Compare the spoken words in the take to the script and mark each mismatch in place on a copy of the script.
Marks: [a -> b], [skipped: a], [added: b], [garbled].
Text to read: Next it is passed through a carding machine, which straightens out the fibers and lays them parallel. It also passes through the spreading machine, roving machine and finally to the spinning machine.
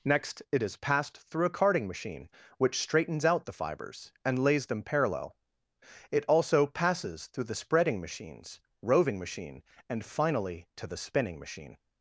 Next it is passed through a carding machine, which straightens out the fibers and lays them parallel. It also passes through the spreading [machine, -> machines] roving machine and finally to the spinning machine.